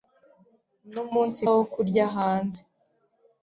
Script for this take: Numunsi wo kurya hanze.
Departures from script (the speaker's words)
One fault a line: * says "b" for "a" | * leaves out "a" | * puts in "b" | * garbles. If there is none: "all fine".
all fine